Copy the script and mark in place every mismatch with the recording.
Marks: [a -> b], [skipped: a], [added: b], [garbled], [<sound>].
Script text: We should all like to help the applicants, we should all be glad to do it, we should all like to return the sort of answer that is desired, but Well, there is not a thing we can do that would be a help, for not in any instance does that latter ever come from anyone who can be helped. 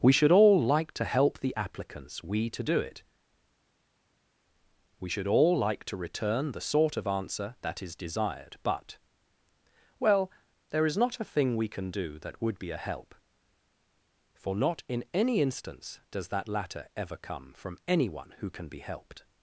We should all like to help the applicants, we [skipped: should all be glad] to do it, we should all like to return the sort of answer that is desired, but Well, there is not a thing we can do that would be a help, for not in any instance does that latter ever come from anyone who can be helped.